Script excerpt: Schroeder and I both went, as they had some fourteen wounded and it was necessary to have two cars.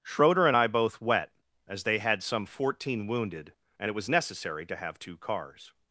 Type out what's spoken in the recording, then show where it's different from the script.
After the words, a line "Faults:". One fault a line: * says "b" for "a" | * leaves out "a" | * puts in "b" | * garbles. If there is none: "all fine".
Schroeder and I both wet, as they had some fourteen wounded and it was necessary to have two cars.
Faults:
* says "wet" for "went"